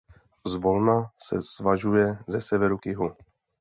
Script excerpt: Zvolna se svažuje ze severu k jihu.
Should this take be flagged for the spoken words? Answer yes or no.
no